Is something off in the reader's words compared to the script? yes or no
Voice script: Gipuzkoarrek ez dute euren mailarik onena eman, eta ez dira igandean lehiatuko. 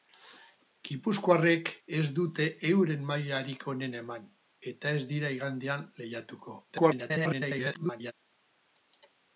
yes